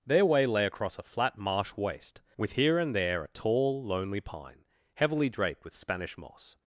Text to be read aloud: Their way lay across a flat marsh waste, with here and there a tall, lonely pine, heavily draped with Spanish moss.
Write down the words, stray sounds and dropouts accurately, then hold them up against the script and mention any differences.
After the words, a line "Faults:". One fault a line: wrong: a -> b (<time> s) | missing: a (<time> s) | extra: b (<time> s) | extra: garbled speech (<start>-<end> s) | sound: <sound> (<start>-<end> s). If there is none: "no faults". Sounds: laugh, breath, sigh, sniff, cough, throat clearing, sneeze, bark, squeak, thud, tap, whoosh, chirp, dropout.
Their way lay across a flat marsh waste, with here and there a tall, lonely pine, heavily draped with Spanish moss.
Faults:
no faults